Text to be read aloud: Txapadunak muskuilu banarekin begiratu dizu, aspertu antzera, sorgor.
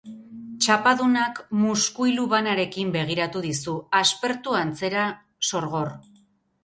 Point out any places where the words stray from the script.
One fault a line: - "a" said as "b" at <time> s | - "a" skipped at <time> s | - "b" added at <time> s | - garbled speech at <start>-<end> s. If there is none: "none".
none